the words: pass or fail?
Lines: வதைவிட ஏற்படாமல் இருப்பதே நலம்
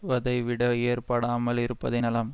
pass